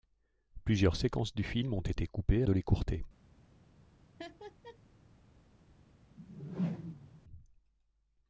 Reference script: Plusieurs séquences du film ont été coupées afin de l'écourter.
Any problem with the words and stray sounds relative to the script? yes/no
yes